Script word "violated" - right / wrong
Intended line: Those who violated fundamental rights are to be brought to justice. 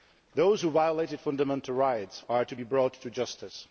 right